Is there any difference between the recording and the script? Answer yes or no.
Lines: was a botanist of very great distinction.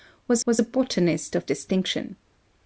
yes